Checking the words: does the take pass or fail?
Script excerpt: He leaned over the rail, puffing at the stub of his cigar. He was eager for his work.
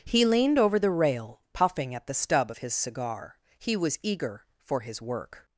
pass